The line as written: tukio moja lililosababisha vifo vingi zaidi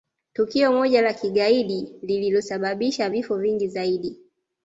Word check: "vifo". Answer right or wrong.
right